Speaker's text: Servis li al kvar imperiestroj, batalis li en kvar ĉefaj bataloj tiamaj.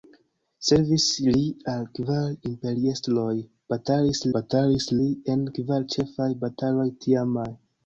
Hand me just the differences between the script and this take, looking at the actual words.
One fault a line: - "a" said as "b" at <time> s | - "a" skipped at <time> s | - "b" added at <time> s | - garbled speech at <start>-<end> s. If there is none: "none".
- "batalis" added at 4.4 s